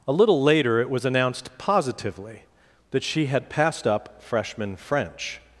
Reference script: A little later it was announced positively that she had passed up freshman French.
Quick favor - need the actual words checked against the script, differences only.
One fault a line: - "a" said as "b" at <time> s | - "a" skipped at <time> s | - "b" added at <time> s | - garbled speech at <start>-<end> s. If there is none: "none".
none